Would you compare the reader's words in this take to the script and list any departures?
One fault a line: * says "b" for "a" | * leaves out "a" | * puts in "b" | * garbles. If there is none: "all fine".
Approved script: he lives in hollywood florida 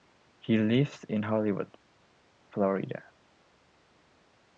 all fine